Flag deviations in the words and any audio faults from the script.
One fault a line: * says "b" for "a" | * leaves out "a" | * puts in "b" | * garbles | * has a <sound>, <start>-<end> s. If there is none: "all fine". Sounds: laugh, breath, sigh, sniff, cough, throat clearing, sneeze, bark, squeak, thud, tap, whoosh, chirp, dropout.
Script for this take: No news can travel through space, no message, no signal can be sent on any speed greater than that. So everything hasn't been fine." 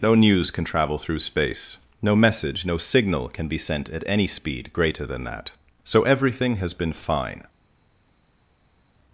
* says "at" for "on"
* says "has" for "hasn't"